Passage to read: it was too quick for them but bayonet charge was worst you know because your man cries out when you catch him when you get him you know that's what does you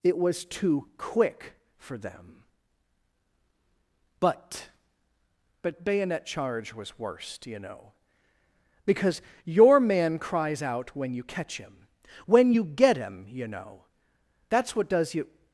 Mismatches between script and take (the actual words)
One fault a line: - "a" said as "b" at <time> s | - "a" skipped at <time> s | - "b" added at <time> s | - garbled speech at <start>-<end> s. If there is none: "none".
- "but" added at 5.6 s